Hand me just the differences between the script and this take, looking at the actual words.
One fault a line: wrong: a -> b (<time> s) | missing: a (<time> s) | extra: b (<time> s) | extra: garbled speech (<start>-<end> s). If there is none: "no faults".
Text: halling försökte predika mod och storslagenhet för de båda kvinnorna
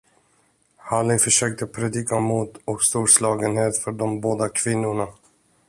no faults